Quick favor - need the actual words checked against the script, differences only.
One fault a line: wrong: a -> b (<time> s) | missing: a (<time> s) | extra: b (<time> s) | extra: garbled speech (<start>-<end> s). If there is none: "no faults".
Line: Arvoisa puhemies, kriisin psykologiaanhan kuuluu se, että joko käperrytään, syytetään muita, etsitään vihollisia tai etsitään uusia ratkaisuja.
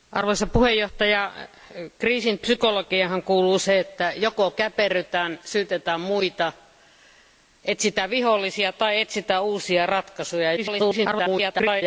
extra: garbled speech (10.6-11.8 s)